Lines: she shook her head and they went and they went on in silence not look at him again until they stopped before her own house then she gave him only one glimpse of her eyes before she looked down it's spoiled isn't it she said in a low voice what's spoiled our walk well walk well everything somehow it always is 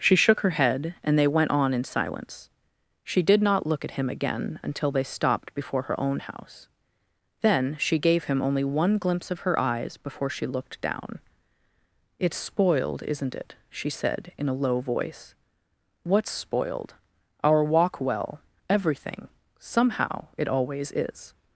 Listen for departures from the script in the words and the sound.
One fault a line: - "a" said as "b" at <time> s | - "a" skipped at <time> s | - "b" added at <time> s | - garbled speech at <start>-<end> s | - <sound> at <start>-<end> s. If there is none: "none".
- "and they went" skipped at 1.5 s
- "she did" added at 3.0 s
- "walk well" skipped at 18.4 s